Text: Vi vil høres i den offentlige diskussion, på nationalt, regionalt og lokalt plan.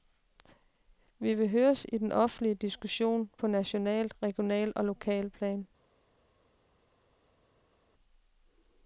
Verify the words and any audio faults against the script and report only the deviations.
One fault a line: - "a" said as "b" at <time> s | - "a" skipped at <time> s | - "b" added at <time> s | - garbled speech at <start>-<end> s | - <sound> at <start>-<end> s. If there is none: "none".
none